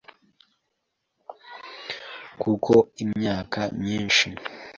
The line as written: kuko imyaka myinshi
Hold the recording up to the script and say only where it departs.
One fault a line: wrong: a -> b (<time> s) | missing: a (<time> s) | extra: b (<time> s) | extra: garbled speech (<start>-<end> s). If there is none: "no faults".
no faults